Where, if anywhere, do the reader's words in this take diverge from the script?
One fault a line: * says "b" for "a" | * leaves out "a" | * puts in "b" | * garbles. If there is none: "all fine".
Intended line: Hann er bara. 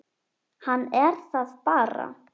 * puts in "það"